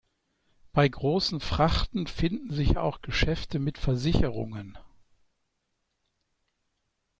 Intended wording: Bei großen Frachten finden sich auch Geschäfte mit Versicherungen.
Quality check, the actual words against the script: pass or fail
pass